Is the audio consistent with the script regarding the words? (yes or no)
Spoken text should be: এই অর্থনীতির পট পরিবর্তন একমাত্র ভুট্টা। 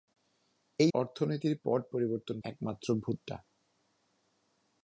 yes